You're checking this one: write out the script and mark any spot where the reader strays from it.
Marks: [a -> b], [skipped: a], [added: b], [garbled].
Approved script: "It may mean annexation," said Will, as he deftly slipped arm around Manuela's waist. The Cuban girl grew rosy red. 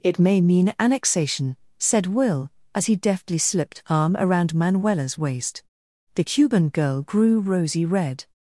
"It may mean annexation," said Will, as he deftly slipped arm around Manuela's waist. The Cuban girl grew rosy red.